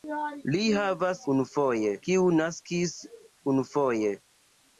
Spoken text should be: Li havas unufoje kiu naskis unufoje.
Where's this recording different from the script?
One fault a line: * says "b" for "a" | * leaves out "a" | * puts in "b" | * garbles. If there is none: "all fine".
all fine